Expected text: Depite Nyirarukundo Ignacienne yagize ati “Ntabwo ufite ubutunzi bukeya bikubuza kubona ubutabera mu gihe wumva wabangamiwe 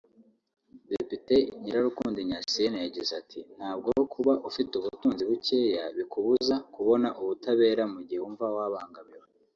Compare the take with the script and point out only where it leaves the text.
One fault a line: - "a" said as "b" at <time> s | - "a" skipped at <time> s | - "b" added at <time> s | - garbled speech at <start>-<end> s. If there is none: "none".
- "kuba" added at 4.1 s